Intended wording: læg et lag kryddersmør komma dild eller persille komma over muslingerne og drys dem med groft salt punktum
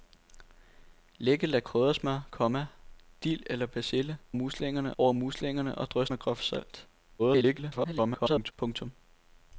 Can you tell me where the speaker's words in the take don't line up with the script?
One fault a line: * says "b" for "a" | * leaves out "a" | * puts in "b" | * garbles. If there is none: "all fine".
* says "muslingerne" for "komma"
* leaves out "dem"
* garbles